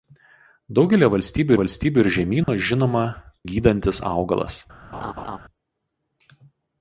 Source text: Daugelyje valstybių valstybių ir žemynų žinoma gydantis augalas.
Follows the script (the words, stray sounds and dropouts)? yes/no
no